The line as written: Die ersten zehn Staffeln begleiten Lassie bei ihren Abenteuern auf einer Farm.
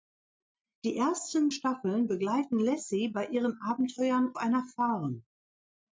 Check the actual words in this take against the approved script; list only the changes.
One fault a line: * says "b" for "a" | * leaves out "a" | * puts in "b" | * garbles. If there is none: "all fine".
* leaves out "zehn"
* leaves out "auf"